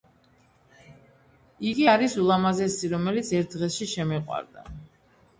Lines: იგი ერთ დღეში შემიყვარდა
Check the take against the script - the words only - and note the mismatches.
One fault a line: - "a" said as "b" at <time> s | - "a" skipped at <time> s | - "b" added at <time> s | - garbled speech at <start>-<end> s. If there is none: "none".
- "არის ულამაზესი რომელიც" added at 1.9 s